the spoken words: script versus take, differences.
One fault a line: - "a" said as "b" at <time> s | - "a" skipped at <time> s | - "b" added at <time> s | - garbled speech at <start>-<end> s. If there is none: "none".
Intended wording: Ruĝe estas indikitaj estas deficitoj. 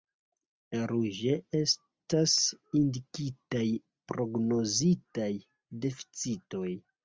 - "estas" said as "prognozitaj" at 4.2 s